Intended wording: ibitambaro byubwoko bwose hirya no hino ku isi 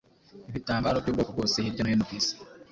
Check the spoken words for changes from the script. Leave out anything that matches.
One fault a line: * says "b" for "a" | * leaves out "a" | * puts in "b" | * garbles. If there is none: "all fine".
all fine